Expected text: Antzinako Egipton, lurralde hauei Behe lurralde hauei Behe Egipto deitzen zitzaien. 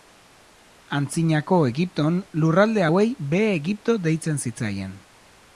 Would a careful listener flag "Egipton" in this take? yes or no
no